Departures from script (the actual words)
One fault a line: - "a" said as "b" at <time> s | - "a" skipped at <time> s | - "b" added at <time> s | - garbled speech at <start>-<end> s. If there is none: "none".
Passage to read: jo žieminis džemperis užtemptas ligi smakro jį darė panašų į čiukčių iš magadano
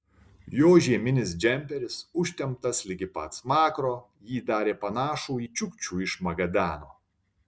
- "pat" added at 3.2 s